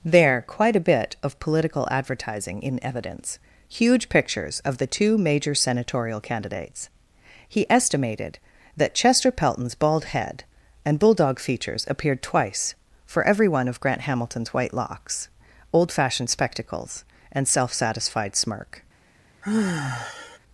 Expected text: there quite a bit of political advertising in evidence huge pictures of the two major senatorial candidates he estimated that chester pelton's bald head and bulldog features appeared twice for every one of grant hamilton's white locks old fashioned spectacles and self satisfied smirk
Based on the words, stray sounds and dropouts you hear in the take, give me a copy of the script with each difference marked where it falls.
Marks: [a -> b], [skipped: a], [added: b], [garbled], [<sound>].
there quite a bit of political advertising in evidence huge pictures of the two major senatorial candidates he estimated that chester pelton's bald head and bulldog features appeared twice for every one of grant hamilton's white locks old fashioned spectacles and self satisfied smirk [sigh]